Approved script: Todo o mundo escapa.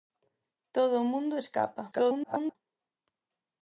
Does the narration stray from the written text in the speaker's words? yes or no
yes